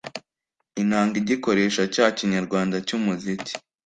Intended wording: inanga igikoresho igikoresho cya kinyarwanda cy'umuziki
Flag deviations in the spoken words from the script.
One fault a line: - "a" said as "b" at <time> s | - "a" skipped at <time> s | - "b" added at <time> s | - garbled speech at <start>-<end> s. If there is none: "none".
- "igikoresho" skipped at 1.8 s